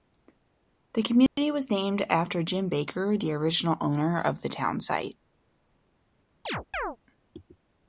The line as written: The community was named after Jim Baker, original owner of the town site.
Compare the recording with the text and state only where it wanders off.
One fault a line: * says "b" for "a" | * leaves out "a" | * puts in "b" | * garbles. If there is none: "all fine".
* puts in "the"